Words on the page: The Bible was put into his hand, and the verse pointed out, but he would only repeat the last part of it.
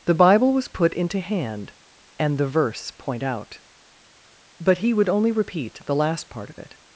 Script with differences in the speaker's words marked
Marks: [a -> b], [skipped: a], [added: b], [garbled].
The Bible was put into [skipped: his] hand, and the verse [pointed -> point] out, but he would only repeat the last part of it.